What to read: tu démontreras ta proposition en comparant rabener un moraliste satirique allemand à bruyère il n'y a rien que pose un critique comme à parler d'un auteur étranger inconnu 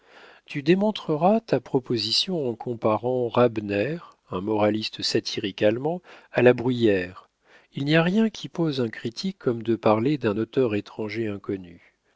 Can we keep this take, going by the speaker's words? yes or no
no